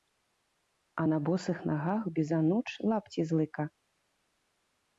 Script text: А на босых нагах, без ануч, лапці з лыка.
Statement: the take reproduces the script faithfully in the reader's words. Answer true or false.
true